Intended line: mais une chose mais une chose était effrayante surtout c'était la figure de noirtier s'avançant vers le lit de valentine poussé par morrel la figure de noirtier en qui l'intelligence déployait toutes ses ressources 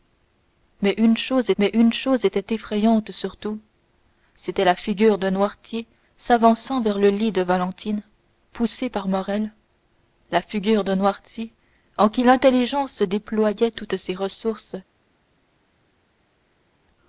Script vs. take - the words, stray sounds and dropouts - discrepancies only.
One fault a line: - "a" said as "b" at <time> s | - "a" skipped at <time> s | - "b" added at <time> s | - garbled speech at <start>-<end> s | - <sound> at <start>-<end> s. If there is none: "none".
none